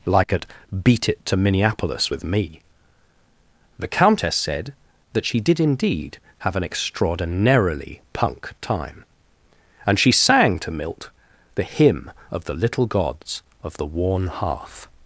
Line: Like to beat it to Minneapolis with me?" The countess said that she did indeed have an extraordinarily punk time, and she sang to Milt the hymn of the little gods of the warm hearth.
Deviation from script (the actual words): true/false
true